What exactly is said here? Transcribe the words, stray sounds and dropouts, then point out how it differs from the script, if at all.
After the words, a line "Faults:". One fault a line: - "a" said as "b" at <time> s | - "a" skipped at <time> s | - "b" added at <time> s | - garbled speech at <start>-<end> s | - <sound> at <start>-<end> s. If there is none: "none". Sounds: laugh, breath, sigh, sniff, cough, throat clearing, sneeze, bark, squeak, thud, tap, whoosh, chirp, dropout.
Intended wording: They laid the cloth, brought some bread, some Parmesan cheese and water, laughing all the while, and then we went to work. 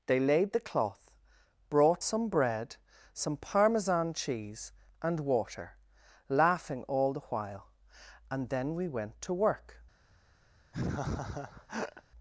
They laid the cloth, brought some bread, some Parmesan cheese and water, laughing all the while, and then we went to work.
Faults:
- laugh at 10.7-12.0 s